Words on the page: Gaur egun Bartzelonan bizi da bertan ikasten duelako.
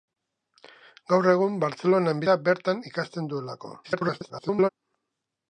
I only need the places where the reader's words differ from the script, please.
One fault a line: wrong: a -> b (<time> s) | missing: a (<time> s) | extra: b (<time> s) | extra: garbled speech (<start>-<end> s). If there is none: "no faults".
missing: bizi (2.2 s)
extra: garbled speech (3.8-4.7 s)